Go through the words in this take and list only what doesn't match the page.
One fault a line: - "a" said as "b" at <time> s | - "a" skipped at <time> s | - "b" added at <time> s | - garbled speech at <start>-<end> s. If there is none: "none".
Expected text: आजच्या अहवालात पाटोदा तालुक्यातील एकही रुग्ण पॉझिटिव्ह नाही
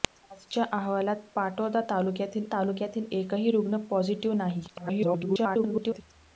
- "तालुक्यातील" added at 2.5 s
- garbled speech at 4.7-6.0 s